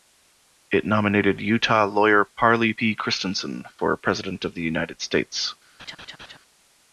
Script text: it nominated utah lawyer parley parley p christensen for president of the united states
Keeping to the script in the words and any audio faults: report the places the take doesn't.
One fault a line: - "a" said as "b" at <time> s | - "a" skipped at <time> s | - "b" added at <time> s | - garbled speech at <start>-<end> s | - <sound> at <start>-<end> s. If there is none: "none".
- "parley" skipped at 2.7 s
- laugh at 5.8-6.4 s